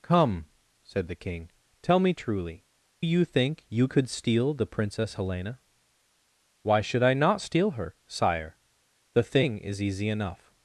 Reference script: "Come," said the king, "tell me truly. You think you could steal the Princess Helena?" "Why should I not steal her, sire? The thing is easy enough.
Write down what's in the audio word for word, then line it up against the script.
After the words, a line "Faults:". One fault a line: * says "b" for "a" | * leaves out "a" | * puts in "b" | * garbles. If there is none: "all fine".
"Come," said the king, "tell me truly. You think you could steal the Princess Helena?" "Why should I not steal her, sire? The thing is easy enough.
Faults:
all fine